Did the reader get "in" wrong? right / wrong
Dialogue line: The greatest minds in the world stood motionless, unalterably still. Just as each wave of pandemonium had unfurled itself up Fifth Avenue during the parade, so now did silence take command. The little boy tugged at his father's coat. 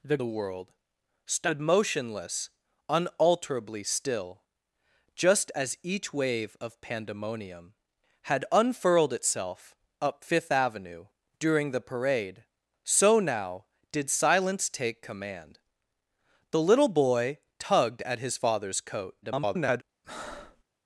wrong